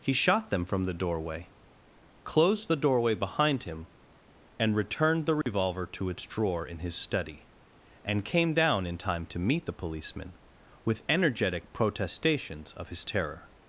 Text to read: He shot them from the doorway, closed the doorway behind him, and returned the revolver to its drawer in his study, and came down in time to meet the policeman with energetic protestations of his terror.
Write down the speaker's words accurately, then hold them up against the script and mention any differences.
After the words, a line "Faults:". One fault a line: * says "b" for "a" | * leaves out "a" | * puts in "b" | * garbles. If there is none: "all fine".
He shot them from the doorway, closed the doorway behind him, and returned the revolver to its drawer in his study, and came down in time to meet the policeman with energetic protestations of his terror.
Faults:
all fine